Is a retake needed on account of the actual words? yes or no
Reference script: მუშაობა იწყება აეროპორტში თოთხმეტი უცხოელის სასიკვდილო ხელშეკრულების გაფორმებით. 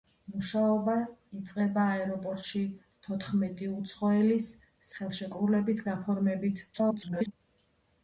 yes